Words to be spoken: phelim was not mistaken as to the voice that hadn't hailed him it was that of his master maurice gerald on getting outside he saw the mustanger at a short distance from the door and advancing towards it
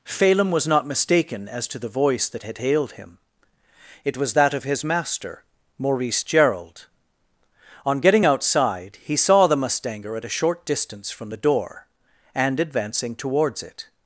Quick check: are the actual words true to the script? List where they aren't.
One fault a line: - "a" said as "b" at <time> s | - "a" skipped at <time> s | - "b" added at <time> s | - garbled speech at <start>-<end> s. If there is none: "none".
- "hadn't" said as "had" at 2.4 s